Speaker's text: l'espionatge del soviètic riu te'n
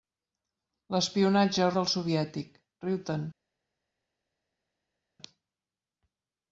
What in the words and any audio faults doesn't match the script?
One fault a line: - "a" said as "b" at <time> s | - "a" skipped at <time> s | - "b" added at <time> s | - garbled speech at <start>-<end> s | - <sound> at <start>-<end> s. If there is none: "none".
none